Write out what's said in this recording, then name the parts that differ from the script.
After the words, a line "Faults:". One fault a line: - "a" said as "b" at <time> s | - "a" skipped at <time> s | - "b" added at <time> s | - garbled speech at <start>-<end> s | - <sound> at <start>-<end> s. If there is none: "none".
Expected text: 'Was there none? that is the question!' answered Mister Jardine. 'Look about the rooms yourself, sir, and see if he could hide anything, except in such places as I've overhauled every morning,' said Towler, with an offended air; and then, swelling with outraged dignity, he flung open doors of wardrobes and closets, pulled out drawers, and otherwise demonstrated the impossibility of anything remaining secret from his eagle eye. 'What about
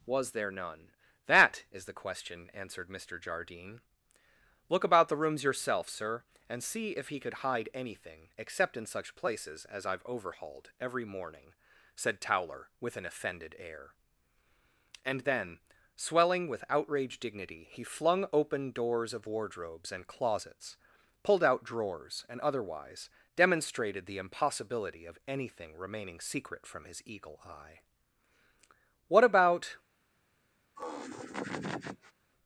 'Was there none? that is the question!' answered Mister Jardine. 'Look about the rooms yourself, sir, and see if he could hide anything, except in such places as I've overhauled every morning,' said Towler, with an offended air; and then, swelling with outraged dignity, he flung open doors of wardrobes and closets, pulled out drawers, and otherwise demonstrated the impossibility of anything remaining secret from his eagle eye. 'What about
Faults:
- laugh at 30.8-32.1 s